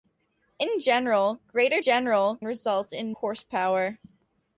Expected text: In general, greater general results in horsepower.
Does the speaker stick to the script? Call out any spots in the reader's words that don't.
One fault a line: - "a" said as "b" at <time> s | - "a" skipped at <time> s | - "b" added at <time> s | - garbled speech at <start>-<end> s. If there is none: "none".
none